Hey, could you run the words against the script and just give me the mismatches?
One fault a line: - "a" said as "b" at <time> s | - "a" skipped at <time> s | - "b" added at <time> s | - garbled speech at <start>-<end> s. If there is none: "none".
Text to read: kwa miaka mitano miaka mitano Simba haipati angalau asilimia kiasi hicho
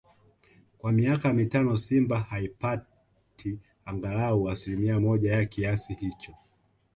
- "miaka mitano" skipped at 1.8 s
- "moja ya" added at 5.0 s